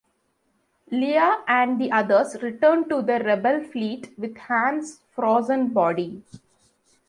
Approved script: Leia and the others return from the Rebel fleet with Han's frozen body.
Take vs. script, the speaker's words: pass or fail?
fail